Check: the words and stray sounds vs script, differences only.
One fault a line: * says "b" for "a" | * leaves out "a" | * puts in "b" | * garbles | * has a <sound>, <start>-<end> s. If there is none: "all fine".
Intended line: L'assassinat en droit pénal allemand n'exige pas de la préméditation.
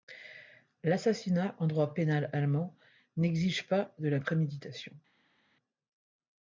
all fine